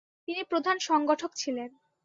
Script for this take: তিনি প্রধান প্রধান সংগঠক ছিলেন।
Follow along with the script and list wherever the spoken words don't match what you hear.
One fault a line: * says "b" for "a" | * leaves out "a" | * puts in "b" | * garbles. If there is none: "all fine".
* leaves out "প্রধান"